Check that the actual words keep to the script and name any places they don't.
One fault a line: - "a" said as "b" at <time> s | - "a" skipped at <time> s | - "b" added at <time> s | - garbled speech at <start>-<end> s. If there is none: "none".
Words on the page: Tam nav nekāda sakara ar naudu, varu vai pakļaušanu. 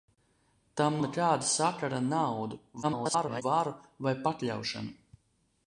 - "nav" skipped at 0.9 s
- garbled speech at 2.8-3.4 s